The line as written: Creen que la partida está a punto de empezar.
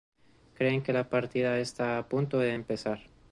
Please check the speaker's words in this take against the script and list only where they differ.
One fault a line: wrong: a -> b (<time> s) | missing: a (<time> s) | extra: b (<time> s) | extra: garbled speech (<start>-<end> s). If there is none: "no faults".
no faults